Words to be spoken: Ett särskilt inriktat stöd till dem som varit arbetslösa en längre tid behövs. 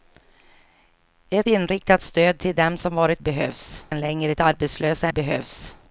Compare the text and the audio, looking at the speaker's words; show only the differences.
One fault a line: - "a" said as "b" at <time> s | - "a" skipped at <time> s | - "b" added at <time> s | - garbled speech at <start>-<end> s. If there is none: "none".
- "särskilt" skipped at 1.5 s
- "arbetslösa" said as "behövs" at 3.2 s
- "tid" said as "arbetslösa" at 4.4 s